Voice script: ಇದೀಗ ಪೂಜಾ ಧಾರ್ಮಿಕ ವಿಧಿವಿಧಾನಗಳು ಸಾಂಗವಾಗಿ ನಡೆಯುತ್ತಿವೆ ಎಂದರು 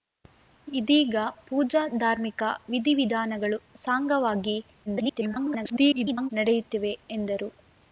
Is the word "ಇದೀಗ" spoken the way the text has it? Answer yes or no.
yes